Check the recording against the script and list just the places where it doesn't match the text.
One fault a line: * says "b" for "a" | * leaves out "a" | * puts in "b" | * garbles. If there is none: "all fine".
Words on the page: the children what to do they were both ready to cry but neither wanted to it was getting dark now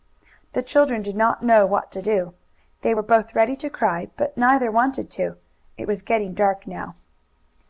* puts in "did not know"